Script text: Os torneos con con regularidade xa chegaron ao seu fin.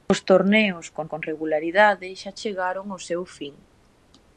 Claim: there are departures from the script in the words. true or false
false